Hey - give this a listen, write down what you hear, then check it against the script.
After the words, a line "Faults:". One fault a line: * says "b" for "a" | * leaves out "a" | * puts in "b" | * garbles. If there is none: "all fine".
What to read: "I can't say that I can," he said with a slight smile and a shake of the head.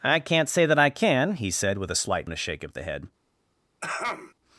"I can't say that I can," he said with a slight and a shake of the head.
Faults:
* leaves out "smile"